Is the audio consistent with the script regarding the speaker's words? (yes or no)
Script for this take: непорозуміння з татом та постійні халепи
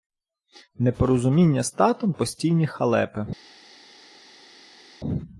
no